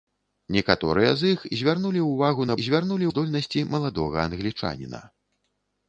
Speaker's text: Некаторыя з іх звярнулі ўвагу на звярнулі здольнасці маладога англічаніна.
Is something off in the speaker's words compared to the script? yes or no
no